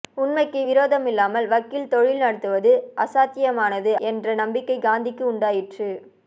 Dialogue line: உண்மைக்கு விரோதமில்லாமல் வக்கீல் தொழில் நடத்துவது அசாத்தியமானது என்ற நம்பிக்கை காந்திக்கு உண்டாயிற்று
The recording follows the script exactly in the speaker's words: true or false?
true